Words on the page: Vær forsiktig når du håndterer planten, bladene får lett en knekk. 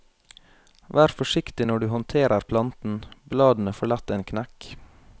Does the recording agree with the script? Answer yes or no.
yes